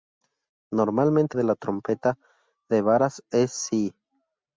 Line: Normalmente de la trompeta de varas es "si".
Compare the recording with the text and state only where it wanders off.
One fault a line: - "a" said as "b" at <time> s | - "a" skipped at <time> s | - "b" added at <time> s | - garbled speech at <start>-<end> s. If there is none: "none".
none